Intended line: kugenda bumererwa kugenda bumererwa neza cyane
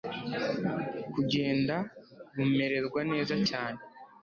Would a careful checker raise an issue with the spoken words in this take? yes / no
yes